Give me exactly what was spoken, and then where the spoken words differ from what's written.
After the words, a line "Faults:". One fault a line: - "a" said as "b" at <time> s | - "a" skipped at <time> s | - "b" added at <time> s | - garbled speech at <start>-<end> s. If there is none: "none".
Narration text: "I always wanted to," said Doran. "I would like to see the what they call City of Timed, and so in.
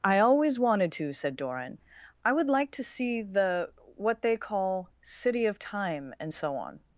"I always wanted to," said Doran. "I would like to see the what they call City of Time, and so on.
Faults:
- "Timed" said as "Time" at 5.6 s
- "in" said as "on" at 6.5 s